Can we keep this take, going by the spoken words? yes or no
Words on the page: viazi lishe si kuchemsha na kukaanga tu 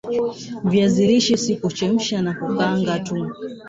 yes